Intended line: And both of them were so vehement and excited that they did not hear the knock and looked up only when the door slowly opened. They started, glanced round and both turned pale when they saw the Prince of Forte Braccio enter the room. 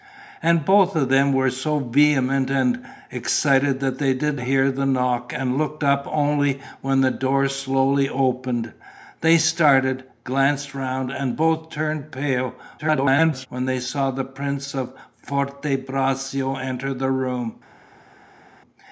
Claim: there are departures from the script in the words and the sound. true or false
true